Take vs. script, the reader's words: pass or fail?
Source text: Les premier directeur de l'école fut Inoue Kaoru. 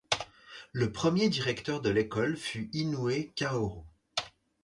fail